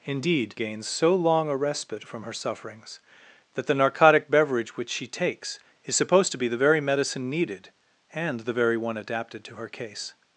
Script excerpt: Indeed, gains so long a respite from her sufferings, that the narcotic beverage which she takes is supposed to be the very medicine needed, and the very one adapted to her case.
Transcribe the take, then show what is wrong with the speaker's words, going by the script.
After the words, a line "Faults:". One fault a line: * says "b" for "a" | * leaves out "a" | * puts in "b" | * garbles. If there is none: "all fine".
Indeed, gains so long a respite from her sufferings, that the narcotic beverage which she takes is supposed to be the very medicine needed, and the very one adapted to her case.
Faults:
all fine